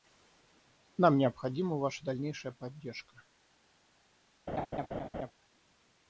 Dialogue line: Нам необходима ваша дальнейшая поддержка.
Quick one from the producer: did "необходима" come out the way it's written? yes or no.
yes